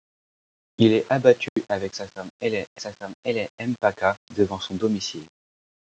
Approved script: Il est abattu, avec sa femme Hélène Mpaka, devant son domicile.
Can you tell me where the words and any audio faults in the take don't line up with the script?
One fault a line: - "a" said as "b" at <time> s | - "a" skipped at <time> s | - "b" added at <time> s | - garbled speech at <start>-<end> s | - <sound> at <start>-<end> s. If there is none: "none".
- dropout at 1.5-1.6 s
- "sa femme Hélène" added at 2.8 s